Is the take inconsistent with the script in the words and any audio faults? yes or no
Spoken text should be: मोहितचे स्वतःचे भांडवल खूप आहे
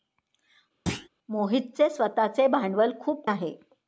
yes